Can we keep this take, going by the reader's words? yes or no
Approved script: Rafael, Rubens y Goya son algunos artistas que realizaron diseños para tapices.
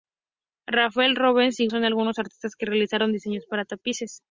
no